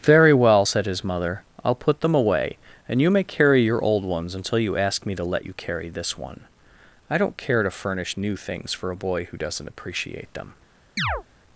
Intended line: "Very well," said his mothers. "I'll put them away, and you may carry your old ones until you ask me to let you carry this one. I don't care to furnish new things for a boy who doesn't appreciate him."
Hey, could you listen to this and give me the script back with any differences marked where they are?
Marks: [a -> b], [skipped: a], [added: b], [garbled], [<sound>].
"Very well," said his [mothers. -> mother] "I'll put them away, and you may carry your old ones until you ask me to let you carry this one. I don't care to furnish new things for a boy who doesn't appreciate [him." -> them] [chirp]